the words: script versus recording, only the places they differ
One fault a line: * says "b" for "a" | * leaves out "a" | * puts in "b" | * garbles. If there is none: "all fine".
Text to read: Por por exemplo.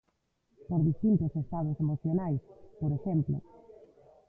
* puts in "distintos estados emocionais"